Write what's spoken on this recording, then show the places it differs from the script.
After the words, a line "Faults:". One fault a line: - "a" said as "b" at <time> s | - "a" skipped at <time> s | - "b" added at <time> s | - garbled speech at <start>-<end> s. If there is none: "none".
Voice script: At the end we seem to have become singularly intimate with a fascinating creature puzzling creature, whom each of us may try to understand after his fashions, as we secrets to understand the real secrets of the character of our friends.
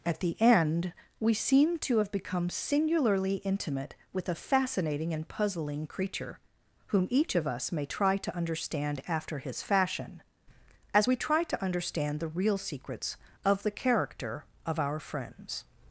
At the end we seem to have become singularly intimate with a fascinating and puzzling creature, whom each of us may try to understand after his fashion, as we try to understand the real secrets of the character of our friends.
Faults:
- "creature" said as "and" at 5.1 s
- "fashions" said as "fashion" at 9.6 s
- "secrets" said as "try" at 11.2 s